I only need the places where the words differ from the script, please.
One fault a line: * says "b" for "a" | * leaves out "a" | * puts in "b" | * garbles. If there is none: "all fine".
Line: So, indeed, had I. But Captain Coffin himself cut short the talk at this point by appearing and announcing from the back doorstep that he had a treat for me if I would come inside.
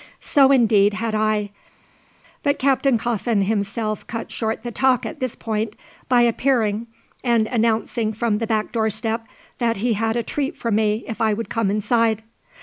all fine